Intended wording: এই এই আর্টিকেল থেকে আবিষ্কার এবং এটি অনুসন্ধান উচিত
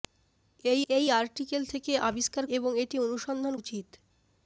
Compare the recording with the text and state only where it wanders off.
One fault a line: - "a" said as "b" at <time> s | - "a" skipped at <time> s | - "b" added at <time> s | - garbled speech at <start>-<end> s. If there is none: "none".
none